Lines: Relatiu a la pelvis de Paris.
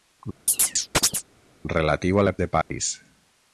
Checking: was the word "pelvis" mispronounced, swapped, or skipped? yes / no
yes